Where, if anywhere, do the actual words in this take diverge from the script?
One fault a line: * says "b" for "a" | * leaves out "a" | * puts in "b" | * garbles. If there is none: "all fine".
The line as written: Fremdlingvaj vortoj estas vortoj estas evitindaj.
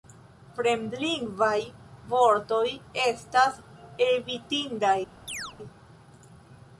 * leaves out "vortoj estas"